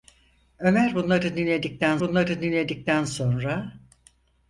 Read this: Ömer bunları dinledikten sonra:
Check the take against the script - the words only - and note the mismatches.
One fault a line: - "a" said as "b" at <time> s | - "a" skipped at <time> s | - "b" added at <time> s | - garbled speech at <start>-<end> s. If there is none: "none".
- "bunları dinledikten" added at 2.0 s